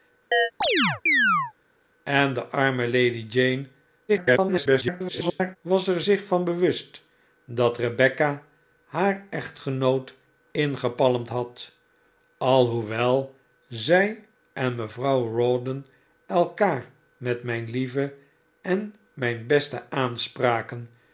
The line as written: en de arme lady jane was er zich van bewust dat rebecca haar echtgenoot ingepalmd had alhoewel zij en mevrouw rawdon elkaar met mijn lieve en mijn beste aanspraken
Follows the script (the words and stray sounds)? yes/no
no